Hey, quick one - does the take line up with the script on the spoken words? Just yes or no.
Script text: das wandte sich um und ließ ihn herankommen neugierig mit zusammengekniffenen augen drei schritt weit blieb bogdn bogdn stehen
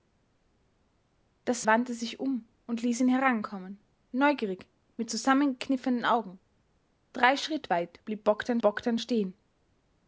yes